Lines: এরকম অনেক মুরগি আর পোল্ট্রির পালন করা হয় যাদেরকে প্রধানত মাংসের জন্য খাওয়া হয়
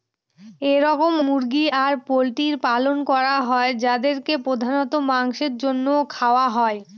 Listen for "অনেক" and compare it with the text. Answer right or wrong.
wrong